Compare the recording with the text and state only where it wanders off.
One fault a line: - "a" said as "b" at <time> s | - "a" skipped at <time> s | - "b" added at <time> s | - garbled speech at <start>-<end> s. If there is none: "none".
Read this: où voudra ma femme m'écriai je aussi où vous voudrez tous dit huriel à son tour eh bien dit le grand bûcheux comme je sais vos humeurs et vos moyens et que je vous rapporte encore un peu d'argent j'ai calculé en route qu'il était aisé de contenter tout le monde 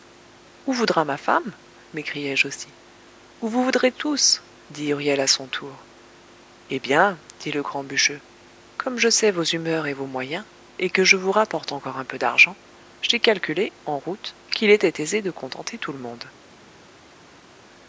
none